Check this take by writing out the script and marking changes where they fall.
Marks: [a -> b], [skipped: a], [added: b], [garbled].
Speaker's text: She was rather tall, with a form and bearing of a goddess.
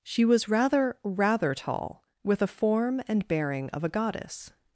She was rather [added: rather] tall, with a form and bearing of a goddess.